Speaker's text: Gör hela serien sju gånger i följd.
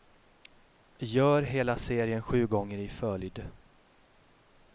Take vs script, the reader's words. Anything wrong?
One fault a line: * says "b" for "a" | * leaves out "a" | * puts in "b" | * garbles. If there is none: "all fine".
all fine